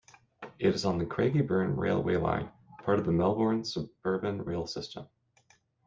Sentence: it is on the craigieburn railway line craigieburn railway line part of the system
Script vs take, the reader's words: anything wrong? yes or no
yes